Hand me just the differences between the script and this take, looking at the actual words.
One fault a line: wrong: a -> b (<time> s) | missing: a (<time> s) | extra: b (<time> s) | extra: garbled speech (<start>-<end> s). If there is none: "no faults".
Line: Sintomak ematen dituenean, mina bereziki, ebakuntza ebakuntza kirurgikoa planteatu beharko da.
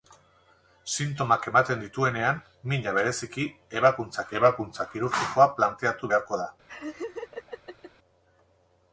no faults